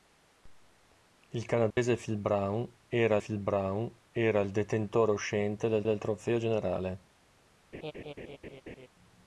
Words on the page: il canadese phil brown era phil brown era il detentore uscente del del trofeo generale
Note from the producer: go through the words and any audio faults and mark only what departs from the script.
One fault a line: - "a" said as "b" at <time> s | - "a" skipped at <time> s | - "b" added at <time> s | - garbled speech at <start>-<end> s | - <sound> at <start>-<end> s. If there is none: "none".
- dropout at 1.7-1.8 s
- laugh at 7.7-8.9 s